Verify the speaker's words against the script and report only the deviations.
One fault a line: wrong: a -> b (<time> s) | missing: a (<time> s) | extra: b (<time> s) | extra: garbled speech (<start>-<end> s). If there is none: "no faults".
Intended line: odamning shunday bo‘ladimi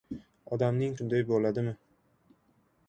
no faults